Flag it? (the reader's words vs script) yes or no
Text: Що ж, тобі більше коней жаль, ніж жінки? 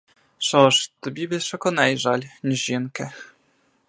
no